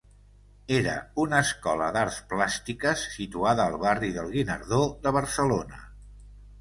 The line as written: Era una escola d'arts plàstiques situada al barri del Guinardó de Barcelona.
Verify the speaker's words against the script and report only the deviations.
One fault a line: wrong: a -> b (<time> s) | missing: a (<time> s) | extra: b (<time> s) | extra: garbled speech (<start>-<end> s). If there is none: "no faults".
no faults